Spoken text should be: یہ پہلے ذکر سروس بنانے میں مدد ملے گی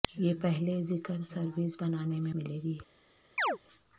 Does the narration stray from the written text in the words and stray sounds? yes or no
yes